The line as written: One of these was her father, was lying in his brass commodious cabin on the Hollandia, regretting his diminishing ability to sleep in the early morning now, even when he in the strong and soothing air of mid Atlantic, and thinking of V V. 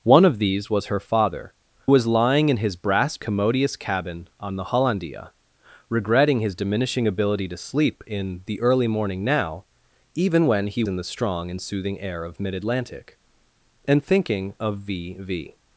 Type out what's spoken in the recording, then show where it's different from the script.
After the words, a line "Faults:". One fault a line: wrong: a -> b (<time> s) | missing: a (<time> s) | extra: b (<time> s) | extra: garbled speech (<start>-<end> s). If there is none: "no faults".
One of these was her father, was lying in his brass commodious cabin on the Hollandia, regretting his diminishing ability to sleep in the early morning now, even when he in the strong and soothing air of mid Atlantic, and thinking of V V.
Faults:
no faults